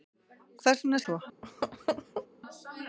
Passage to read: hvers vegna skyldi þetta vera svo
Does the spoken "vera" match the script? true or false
false